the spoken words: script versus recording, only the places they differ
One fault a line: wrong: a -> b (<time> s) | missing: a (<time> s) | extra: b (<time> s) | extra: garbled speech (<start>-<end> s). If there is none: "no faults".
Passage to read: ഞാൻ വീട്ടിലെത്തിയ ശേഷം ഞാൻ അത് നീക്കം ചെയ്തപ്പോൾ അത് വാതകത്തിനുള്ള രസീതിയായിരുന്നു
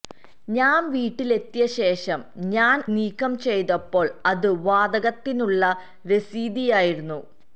missing: അത് (2.8 s)